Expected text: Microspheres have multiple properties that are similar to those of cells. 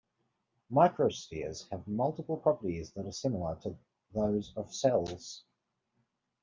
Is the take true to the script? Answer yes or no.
yes